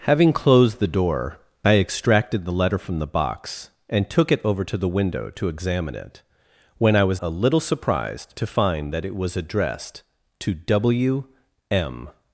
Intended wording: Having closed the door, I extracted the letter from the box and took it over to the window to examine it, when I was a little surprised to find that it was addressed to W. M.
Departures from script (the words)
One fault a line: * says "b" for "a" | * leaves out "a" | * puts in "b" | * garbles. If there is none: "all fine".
all fine